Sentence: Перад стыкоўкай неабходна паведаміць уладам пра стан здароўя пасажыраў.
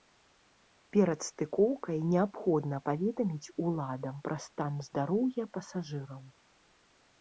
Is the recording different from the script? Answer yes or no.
no